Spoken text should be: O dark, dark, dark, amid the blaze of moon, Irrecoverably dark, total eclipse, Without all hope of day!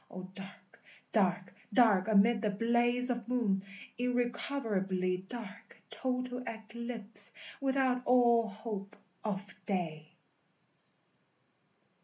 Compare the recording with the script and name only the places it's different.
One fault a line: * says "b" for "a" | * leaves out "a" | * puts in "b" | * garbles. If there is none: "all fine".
all fine